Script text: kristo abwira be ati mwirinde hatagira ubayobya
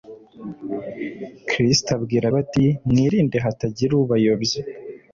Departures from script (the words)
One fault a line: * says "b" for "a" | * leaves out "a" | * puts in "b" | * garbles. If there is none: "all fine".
all fine